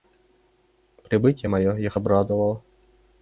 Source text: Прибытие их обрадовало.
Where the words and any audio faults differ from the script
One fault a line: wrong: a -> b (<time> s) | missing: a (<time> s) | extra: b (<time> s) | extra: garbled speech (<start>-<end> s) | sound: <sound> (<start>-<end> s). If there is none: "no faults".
extra: мое (1.5 s)